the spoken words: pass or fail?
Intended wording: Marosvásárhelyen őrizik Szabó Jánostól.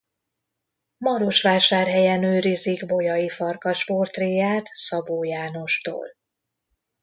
fail